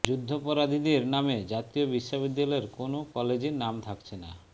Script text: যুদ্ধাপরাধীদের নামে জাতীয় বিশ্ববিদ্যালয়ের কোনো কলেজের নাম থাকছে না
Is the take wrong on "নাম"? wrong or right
right